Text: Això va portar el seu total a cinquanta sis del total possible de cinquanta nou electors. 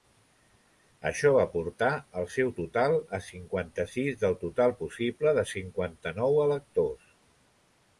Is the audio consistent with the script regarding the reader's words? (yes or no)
yes